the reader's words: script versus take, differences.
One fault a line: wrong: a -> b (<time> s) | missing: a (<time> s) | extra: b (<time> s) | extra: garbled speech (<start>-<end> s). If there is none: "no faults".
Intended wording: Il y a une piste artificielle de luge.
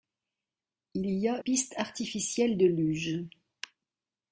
missing: une (1.4 s)